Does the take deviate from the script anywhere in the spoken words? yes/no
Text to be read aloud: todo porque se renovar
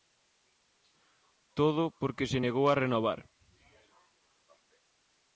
yes